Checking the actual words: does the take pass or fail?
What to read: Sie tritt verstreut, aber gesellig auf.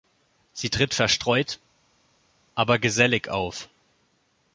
pass